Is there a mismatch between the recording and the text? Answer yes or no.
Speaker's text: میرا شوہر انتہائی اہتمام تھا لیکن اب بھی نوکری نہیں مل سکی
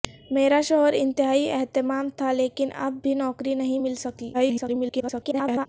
yes